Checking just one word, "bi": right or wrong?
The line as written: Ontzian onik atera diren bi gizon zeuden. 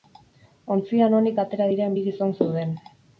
right